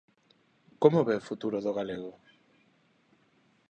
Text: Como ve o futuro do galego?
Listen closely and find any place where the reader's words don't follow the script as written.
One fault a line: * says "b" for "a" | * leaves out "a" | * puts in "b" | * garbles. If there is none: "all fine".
all fine